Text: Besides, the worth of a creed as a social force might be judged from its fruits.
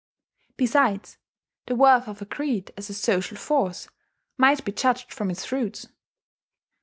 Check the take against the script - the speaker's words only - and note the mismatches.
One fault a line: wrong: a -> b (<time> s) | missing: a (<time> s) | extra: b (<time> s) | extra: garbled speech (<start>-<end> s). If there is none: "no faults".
no faults